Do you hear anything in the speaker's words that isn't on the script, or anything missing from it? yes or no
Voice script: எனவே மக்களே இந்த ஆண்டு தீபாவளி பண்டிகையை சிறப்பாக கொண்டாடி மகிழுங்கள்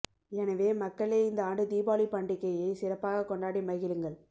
no